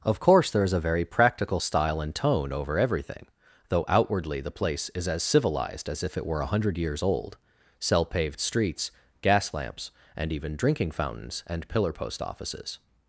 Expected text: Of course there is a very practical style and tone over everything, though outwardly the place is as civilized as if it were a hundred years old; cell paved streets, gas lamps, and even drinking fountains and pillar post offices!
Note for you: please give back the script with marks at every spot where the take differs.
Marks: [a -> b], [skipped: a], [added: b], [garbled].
Of course there is a very practical style and tone over everything, though outwardly the place is as civilized as if it were a hundred years old; cell paved streets, gas lamps, and even drinking fountains and pillar post offices!